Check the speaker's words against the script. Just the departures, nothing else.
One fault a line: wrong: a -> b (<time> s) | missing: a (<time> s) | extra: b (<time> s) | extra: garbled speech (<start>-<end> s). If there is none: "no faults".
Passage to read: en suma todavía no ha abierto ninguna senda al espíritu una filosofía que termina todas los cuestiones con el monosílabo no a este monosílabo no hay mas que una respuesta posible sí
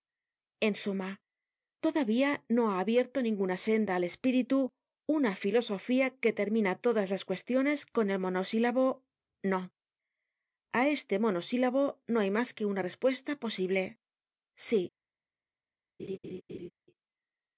wrong: los -> las (7.1 s)